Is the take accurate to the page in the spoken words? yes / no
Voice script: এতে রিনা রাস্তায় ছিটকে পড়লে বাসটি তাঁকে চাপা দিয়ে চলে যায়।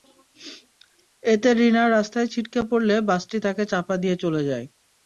yes